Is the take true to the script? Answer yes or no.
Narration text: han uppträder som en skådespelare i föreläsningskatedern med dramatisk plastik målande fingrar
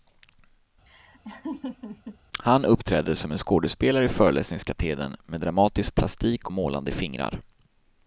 yes